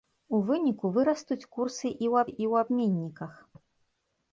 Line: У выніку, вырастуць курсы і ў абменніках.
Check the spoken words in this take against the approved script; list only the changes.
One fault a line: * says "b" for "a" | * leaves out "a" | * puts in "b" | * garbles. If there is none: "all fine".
* puts in "і ў"